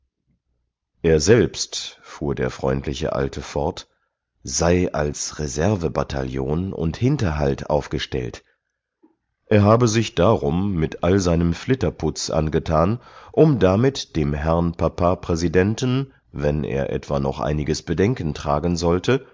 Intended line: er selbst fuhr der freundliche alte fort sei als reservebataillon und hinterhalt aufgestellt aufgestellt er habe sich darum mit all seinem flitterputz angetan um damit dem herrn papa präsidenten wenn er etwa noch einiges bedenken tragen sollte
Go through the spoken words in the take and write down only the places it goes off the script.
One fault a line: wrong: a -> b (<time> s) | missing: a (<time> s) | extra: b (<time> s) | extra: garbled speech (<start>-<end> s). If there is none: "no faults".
missing: aufgestellt (8.4 s)